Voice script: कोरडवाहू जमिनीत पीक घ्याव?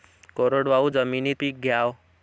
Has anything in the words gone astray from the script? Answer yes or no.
no